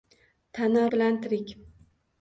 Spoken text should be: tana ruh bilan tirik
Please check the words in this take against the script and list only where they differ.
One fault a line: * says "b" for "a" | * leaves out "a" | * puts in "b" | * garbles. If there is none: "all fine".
* leaves out "ruh"